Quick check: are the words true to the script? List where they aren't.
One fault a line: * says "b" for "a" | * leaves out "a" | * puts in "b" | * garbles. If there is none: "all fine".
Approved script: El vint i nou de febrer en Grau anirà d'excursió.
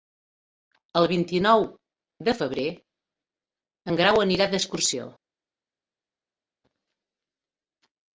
all fine